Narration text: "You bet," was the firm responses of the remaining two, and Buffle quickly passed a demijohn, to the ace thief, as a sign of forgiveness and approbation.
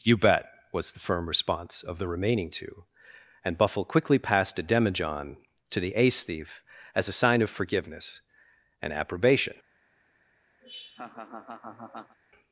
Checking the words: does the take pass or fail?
fail